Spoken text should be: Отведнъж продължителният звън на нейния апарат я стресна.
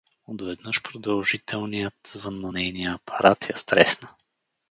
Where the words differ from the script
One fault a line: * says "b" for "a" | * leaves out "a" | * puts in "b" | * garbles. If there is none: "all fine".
all fine